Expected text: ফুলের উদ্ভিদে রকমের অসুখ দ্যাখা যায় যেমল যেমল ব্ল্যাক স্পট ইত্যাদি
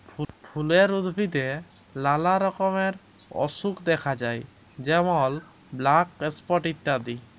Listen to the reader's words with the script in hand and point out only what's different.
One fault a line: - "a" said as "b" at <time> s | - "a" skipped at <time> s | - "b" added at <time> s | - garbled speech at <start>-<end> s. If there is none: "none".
- "লালা" added at 1.9 s
- "যেমল" skipped at 5.3 s